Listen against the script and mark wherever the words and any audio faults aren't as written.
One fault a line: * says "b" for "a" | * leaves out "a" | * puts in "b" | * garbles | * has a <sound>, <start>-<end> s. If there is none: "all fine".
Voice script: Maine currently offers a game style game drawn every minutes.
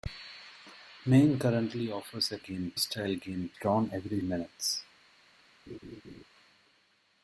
* has a laugh, 5.7-6.2 s